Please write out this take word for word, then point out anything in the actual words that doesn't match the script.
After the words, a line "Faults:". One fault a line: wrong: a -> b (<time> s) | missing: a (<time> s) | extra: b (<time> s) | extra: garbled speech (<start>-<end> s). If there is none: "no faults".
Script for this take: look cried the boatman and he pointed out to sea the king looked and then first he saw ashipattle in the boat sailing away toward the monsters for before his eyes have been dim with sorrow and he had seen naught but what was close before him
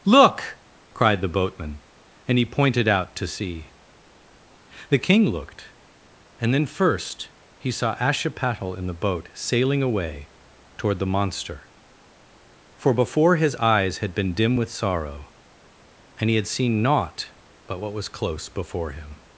look cried the boatman and he pointed out to sea the king looked and then first he saw ashipattle in the boat sailing away toward the monster for before his eyes had been dim with sorrow and he had seen naught but what was close before him
Faults:
wrong: monsters -> monster (11.1 s)
wrong: have -> had (14.0 s)